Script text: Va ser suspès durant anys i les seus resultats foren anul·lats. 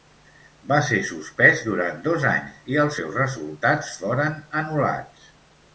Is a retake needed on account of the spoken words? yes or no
yes